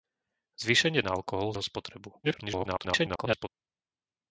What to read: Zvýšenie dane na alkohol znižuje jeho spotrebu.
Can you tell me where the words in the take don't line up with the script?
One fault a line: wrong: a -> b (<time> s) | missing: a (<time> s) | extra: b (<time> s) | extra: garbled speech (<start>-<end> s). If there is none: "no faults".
missing: dane (1.1 s)
missing: znižuje (1.5 s)
extra: garbled speech (2.2-3.5 s)